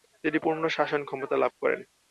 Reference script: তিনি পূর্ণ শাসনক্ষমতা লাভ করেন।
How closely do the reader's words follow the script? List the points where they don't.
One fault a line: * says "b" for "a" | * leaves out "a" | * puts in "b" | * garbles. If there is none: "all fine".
all fine